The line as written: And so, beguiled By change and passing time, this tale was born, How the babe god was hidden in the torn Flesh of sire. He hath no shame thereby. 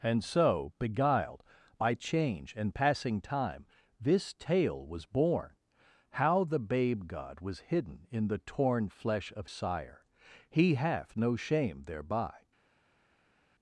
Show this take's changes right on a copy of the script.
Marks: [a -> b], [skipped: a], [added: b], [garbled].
And so, beguiled By change and passing time, this tale was born, How the babe god was hidden in the torn Flesh of sire. He hath no shame thereby.